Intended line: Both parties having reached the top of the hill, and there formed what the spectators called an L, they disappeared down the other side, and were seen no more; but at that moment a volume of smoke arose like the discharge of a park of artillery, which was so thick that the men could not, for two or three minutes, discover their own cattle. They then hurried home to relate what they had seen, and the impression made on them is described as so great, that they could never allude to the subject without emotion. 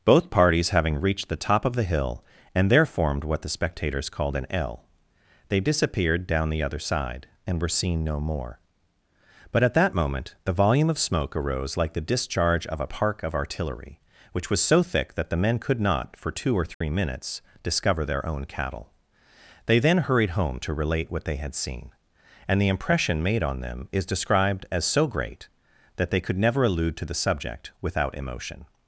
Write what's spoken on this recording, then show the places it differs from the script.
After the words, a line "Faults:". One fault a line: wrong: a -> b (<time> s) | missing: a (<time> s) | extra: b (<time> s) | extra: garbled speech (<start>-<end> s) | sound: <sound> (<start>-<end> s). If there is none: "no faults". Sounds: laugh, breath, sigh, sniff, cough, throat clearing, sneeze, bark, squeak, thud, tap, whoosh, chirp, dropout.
Both parties having reached the top of the hill, and there formed what the spectators called an L, they disappeared down the other side, and were seen no more; but at that moment the volume of smoke arose like the discharge of a park of artillery, which was so thick that the men could not, for two or three minutes, discover their own cattle. They then hurried home to relate what they had seen, and the impression made on them is described as so great, that they could never allude to the subject without emotion.
Faults:
wrong: a -> the (10.4 s)
sound: dropout (16.7-16.8 s)